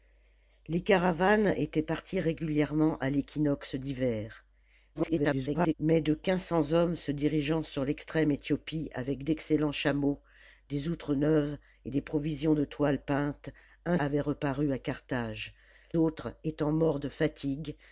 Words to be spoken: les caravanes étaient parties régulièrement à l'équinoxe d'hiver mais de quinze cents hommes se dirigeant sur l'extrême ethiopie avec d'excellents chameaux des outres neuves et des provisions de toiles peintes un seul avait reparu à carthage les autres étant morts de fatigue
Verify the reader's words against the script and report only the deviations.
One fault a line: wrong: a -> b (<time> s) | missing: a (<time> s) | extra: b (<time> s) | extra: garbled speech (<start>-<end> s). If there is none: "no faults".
extra: garbled speech (4.9-5.7 s)
missing: seul (14.0 s)
missing: les (15.5 s)